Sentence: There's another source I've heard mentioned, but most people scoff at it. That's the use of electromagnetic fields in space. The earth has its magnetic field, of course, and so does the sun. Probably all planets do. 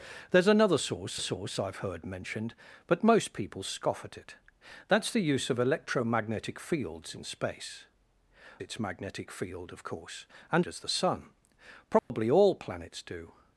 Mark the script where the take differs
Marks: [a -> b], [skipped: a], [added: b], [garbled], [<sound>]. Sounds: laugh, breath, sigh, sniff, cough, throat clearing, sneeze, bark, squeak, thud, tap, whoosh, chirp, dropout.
There's another source [added: source] I've heard mentioned, but most people scoff at it. That's the use of electromagnetic fields in space. [skipped: The earth has] its magnetic field, of course, and [skipped: so] does the sun. Probably [dropout] all planets do.